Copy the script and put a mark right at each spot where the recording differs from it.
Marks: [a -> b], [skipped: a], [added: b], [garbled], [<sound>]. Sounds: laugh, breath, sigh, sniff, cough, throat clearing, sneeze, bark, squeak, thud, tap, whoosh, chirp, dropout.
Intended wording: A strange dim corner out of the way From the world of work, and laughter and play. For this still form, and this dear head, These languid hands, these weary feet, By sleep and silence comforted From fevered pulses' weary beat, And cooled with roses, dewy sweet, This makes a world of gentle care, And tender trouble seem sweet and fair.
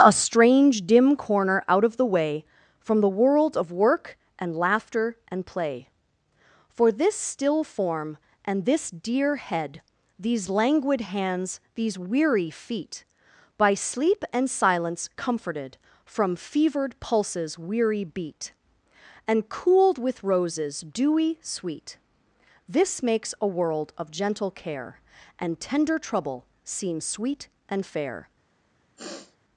A strange dim corner out of the way From the world of work, and laughter and play. For this still form, and this dear head, These languid hands, these weary feet, By sleep and silence comforted From fevered pulses' weary beat, And cooled with roses, dewy sweet, This makes a world of gentle care, And tender trouble seem sweet and fair. [sniff]